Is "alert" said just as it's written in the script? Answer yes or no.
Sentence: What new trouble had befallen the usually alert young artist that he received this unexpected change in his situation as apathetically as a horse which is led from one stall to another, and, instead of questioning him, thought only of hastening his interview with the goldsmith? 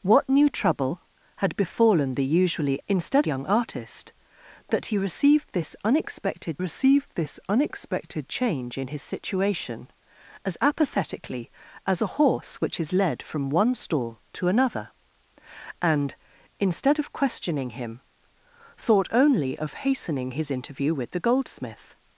no